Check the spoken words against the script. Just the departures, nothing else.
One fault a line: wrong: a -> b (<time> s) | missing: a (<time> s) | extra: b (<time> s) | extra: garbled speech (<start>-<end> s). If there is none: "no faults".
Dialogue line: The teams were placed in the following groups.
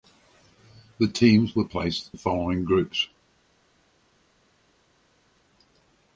missing: in (2.1 s)